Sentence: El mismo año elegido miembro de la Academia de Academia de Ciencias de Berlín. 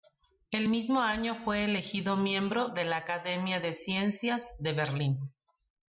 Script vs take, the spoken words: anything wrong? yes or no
yes